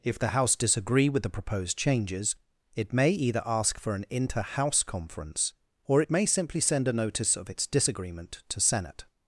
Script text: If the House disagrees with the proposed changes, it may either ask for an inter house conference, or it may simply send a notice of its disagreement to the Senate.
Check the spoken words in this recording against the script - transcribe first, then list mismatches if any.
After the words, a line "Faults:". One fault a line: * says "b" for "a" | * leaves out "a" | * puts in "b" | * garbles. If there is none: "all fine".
If the House disagree with the proposed changes, it may either ask for an inter house conference, or it may simply send a notice of its disagreement to Senate.
Faults:
* says "disagree" for "disagrees"
* leaves out "the"